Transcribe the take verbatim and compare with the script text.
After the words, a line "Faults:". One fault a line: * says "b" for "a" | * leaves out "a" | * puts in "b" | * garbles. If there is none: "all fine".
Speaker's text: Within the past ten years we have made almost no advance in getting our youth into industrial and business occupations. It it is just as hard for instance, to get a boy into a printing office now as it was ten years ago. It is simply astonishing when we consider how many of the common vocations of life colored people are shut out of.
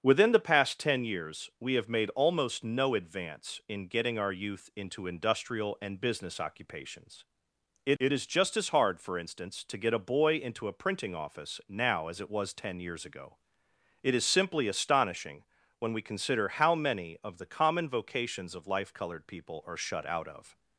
Within the past ten years we have made almost no advance in getting our youth into industrial and business occupations. It it is just as hard for instance, to get a boy into a printing office now as it was ten years ago. It is simply astonishing when we consider how many of the common vocations of life colored people are shut out of.
Faults:
all fine